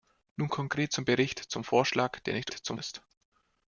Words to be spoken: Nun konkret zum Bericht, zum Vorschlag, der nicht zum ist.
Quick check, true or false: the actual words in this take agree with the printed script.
true